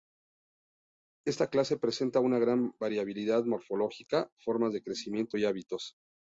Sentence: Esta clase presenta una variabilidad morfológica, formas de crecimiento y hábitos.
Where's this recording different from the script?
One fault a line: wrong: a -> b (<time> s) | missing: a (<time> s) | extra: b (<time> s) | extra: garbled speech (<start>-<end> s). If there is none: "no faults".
extra: gran (2.4 s)